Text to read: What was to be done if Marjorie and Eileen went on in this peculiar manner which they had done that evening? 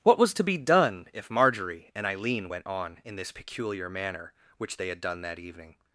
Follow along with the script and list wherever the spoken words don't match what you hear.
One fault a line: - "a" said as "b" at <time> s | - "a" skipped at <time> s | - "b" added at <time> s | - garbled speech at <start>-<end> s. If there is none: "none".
none